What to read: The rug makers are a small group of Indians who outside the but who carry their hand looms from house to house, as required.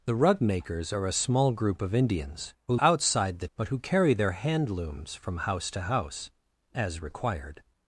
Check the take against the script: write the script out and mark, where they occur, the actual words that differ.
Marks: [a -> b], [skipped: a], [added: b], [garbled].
The rug makers are a small group of Indians who outside the but who carry their hand looms from house to house, as required.